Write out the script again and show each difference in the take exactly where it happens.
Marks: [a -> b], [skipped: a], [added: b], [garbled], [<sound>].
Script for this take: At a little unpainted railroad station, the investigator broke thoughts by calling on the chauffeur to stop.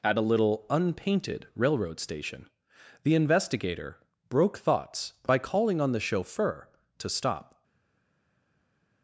At a little unpainted railroad station, the investigator broke thoughts by calling on the chauffeur to stop.